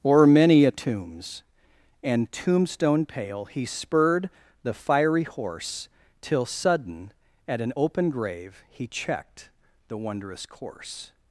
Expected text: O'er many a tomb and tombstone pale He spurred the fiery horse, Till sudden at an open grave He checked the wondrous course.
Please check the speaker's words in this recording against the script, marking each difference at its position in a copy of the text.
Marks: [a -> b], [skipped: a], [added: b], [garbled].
O'er many a [tomb -> tombs] and tombstone pale He spurred the fiery horse, Till sudden at an open grave He checked the wondrous course.